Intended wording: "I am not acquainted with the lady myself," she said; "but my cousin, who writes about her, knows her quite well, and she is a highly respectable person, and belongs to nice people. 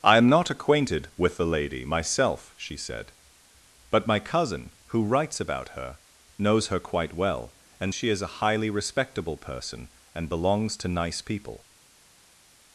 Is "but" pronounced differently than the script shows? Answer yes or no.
no